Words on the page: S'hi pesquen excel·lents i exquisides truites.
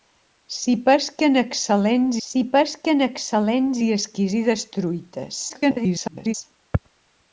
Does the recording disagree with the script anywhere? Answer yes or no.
yes